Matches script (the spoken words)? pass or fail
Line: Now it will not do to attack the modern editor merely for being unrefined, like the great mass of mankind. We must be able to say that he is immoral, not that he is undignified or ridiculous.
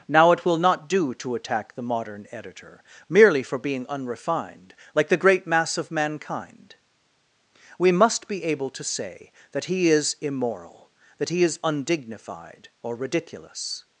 fail